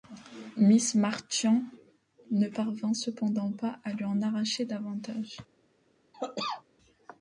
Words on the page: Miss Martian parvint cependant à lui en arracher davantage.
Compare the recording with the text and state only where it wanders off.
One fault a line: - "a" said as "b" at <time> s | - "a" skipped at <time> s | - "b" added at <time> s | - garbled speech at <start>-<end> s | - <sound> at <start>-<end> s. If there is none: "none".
- "ne" added at 2.3 s
- "pas" added at 3.5 s
- cough at 6.1-6.6 s